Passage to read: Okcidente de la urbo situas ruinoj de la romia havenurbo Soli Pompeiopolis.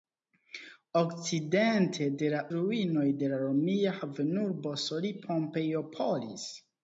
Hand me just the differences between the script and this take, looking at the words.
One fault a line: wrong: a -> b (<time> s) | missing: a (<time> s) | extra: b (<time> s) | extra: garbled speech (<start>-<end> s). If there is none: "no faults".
missing: urbo situas (2.4 s)